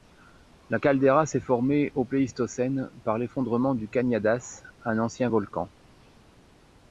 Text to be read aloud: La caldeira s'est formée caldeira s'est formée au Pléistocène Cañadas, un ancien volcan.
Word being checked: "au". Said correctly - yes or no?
no